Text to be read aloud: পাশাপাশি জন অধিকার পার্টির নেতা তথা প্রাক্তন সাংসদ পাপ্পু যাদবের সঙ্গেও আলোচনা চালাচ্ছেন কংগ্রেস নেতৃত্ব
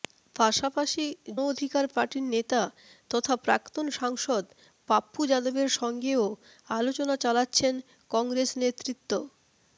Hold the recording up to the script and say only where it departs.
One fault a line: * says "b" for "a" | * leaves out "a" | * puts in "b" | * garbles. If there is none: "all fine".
* leaves out "জন"